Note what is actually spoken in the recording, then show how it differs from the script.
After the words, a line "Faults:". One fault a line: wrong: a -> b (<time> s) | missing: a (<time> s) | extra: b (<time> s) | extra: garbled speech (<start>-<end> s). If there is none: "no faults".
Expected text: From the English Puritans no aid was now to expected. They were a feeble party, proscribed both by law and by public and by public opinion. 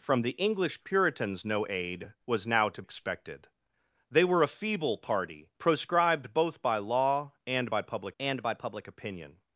From the English Puritans no aid was now to expected. They were a feeble party, proscribed both by law and by public and by public opinion.
Faults:
no faults